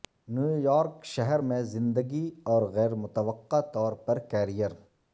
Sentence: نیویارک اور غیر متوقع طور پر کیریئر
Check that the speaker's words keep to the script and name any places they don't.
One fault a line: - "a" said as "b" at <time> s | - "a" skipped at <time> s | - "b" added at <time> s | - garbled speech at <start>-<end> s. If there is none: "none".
- "شہر میں زندگی" added at 1.1 s